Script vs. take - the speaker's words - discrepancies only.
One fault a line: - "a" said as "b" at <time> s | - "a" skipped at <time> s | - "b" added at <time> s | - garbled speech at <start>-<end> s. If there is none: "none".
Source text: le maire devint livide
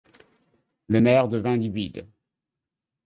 none